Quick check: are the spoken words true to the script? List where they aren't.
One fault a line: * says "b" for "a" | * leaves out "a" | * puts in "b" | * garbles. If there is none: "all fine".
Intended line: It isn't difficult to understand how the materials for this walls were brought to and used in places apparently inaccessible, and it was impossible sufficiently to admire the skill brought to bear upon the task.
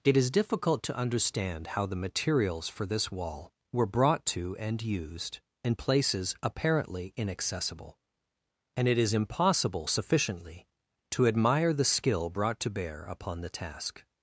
* says "is" for "isn't"
* says "wall" for "walls"
* says "is" for "was"